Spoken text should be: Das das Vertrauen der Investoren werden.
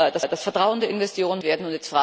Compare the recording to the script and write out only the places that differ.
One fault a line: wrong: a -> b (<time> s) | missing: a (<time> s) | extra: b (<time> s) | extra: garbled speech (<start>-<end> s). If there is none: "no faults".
no faults